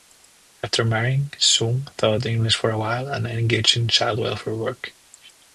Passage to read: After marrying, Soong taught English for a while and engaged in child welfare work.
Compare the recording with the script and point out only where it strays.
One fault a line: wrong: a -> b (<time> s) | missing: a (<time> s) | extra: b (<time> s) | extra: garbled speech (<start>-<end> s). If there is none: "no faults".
no faults